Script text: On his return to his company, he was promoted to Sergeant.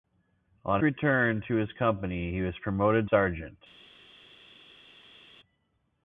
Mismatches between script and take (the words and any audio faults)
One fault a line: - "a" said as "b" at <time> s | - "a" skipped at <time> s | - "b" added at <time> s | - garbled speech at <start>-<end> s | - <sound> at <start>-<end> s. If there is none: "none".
- "his" skipped at 0.8 s
- "to" skipped at 3.1 s